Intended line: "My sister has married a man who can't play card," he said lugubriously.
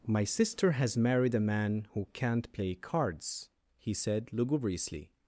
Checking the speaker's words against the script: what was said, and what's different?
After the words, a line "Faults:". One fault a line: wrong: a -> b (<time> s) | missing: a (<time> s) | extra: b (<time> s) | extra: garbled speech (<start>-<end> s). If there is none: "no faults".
"My sister has married a man who can't play cards," he said lugubriously.
Faults:
wrong: card -> cards (2.7 s)